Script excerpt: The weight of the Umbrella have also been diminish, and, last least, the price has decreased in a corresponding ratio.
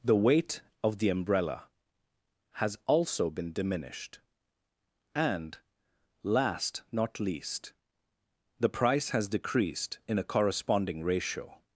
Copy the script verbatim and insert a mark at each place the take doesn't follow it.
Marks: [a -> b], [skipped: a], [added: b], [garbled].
The weight of the Umbrella [have -> has] also been [diminish, -> diminished] and, last [added: not] least, the price has decreased in a corresponding ratio.